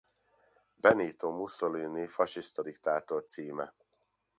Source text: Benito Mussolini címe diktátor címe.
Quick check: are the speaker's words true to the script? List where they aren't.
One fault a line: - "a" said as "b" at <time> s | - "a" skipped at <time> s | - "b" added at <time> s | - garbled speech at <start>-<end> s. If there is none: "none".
- "címe" said as "fasiszta" at 2.1 s